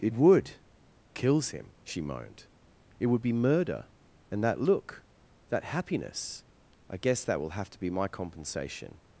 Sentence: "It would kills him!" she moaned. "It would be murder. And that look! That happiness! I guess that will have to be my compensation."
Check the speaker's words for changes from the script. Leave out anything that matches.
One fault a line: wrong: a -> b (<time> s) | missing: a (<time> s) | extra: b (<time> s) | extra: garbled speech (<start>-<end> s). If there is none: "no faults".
no faults